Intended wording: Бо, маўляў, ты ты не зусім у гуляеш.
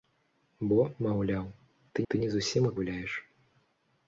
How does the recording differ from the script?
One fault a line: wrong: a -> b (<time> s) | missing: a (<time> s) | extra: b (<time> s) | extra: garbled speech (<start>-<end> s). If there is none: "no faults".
no faults